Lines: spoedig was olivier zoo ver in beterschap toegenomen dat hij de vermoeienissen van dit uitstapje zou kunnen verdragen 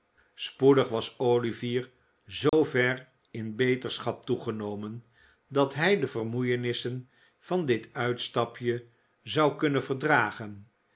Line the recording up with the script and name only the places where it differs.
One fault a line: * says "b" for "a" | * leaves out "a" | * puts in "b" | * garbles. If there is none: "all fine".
all fine